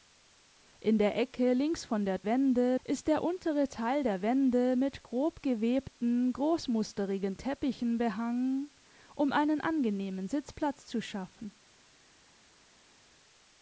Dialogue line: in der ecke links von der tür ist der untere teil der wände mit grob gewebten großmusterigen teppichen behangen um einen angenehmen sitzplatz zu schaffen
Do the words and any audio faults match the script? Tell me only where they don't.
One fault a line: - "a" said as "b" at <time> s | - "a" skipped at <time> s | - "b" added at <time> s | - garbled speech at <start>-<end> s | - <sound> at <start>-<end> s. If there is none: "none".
- "tür" said as "wände" at 2.2 s